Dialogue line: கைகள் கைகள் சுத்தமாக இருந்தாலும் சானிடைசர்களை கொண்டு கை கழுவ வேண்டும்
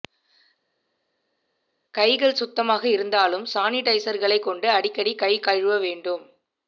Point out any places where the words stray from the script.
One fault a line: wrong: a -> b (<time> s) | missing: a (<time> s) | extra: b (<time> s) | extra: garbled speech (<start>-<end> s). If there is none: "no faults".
missing: கைகள் (2.4 s)
extra: அடிக்கடி (4.7 s)